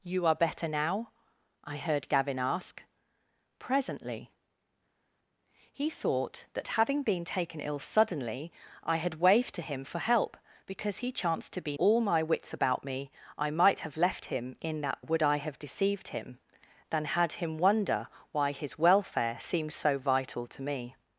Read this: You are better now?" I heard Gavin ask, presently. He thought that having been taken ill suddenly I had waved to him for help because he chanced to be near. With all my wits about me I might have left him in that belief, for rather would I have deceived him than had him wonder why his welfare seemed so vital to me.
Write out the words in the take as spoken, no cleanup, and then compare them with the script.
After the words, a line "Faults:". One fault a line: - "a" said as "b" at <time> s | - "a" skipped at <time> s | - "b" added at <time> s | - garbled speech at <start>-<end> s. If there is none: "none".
You are better now?" I heard Gavin ask, presently. He thought that having been taken ill suddenly I had waved to him for help because he chanced to be all my wits about me I might have left him in that would I have deceived him than had him wonder why his welfare seemed so vital to me.
Faults:
- "near With" skipped at 11.8 s
- "belief for rather" skipped at 15.0 s